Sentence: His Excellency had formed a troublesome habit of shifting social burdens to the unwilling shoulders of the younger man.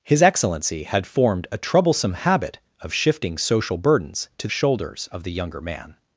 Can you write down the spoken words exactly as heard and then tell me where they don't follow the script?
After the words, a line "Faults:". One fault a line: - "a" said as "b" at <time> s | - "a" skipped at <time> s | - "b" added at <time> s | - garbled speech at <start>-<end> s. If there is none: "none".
His Excellency had formed a troublesome habit of shifting social burdens to shoulders of the younger man.
Faults:
- "the unwilling" skipped at 4.5 s